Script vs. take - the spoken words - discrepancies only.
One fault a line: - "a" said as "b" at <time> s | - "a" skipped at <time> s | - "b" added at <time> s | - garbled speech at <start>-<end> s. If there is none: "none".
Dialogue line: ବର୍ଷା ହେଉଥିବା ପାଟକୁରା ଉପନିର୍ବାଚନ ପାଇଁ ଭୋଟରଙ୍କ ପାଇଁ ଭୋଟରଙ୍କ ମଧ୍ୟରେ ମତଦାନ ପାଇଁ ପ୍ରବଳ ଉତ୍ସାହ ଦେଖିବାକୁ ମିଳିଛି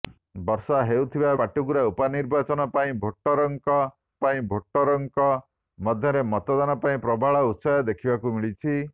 none